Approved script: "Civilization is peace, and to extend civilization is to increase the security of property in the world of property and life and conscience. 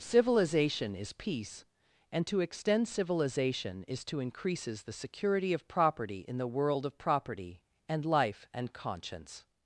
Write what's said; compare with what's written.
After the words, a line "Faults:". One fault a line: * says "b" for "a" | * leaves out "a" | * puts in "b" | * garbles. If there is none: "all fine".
"Civilization is peace, and to extend civilization is to increases the security of property in the world of property and life and conscience.
Faults:
* says "increases" for "increase"